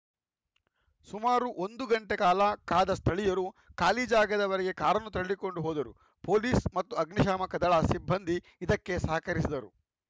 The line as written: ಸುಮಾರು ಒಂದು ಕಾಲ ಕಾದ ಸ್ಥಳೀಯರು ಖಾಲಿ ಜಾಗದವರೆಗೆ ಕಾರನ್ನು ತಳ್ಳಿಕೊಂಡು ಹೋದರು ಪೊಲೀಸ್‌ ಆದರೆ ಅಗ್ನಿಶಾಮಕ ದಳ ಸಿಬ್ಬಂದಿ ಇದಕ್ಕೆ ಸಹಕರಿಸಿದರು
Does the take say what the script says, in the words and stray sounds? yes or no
no